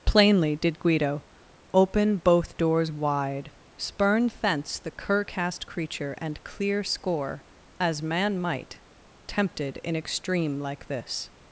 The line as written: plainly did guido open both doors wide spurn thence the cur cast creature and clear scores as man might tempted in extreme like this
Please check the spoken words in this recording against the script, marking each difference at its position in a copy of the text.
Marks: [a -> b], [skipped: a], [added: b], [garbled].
plainly did guido open both doors wide spurn thence the cur cast creature and clear [scores -> score] as man might tempted in extreme like this